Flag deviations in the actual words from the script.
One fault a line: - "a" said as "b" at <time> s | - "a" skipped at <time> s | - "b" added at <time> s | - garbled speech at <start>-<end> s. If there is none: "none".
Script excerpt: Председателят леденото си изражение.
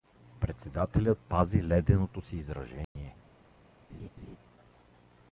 - "пази" added at 1.2 s